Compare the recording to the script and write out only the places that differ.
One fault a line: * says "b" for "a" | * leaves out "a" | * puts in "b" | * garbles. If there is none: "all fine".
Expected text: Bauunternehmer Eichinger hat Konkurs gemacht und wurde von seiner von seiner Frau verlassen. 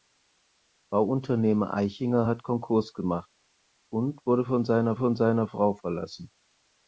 all fine